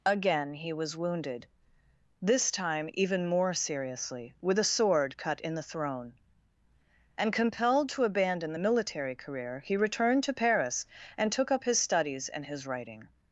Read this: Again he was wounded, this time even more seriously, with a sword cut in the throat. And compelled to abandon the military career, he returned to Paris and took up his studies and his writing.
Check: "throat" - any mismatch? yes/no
yes